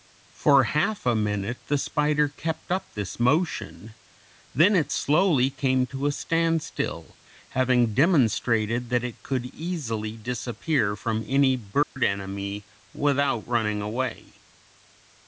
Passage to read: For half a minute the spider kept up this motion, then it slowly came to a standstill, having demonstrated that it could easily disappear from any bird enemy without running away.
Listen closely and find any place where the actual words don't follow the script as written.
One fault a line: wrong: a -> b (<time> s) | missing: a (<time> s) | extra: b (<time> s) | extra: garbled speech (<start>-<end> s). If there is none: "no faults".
no faults